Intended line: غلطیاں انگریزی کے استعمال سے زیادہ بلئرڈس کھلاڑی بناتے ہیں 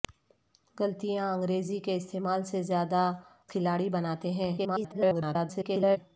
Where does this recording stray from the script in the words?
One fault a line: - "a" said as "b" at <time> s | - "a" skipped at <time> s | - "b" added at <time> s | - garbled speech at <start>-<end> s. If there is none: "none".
- "بلئرڈس" skipped at 3.0 s
- garbled speech at 4.6-6.0 s